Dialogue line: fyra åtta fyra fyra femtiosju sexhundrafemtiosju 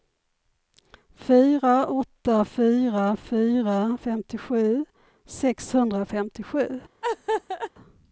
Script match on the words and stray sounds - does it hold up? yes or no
no